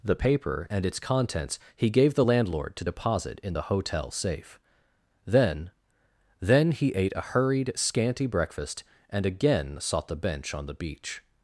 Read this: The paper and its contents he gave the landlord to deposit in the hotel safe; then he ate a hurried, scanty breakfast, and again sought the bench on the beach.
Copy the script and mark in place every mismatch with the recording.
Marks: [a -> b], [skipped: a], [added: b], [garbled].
The paper and its contents he gave the landlord to deposit in the hotel safe; then [added: then] he ate a hurried, scanty breakfast, and again sought the bench on the beach.